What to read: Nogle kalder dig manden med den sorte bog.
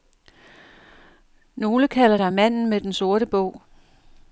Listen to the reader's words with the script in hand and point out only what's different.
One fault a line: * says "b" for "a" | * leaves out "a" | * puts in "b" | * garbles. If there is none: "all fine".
all fine